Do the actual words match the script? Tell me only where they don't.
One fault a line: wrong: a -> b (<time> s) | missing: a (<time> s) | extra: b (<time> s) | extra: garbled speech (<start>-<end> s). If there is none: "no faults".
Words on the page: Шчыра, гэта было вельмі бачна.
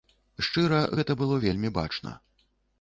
no faults